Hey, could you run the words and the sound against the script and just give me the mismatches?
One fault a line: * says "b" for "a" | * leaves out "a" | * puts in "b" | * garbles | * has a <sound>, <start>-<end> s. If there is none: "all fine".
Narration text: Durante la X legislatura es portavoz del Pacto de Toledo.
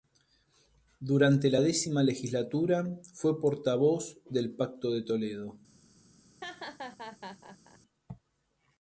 * says "fue" for "es"
* has a laugh, 6.4-7.8 s